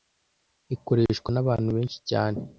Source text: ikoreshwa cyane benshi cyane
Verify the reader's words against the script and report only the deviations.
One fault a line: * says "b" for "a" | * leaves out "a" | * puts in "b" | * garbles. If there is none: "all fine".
* says "nabantu" for "cyane"